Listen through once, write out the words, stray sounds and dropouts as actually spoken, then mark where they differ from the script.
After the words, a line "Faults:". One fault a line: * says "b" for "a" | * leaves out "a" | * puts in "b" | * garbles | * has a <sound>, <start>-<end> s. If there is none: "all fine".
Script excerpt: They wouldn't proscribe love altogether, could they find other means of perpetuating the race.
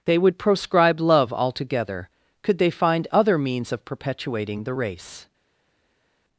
They would proscribe love altogether, could they find other means of perpetuating the race.
Faults:
* says "would" for "wouldn't"